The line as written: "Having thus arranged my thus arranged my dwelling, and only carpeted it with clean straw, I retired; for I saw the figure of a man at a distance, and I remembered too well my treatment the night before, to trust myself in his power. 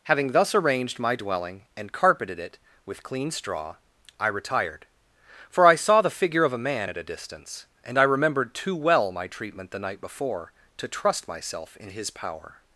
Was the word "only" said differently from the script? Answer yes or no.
yes